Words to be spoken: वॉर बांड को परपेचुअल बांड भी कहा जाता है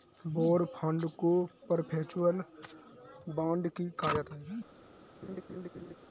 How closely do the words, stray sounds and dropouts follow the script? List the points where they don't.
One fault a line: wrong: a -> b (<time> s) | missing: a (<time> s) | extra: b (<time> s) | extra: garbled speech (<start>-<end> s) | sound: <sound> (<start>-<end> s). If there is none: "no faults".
sound: laugh (5.2-5.9 s)